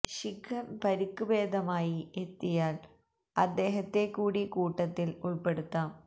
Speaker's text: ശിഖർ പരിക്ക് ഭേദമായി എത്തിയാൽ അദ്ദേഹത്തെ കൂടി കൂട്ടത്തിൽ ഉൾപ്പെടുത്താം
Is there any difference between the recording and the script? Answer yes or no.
no